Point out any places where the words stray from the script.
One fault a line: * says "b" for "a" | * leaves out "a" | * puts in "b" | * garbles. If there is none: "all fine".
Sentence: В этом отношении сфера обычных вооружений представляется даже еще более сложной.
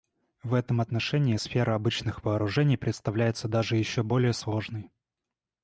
all fine